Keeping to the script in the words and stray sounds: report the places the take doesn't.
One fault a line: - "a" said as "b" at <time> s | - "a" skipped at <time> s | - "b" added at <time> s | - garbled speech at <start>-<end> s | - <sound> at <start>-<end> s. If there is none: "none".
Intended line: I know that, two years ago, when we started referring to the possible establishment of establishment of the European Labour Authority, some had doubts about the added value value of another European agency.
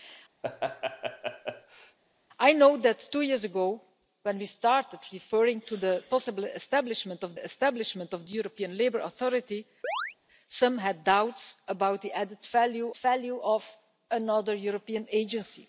- laugh at 0.4-2.0 s
- chirp at 9.8-10.2 s